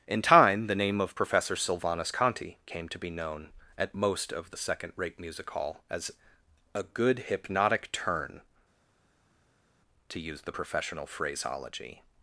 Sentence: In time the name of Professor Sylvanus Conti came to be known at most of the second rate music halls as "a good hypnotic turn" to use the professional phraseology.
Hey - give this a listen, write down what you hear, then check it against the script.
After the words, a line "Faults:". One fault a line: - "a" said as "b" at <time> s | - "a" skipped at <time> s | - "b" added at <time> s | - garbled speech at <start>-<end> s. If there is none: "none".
In time the name of Professor Sylvanus Conti came to be known at most of the second rate music hall as "a good hypnotic turn" to use the professional phraseology.
Faults:
- "halls" said as "hall" at 5.5 s